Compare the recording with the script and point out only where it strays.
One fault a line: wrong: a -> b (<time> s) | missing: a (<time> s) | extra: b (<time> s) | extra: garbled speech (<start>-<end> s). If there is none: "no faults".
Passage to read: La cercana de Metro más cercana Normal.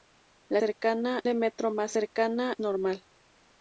no faults